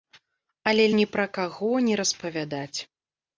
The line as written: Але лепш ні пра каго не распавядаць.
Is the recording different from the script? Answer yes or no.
yes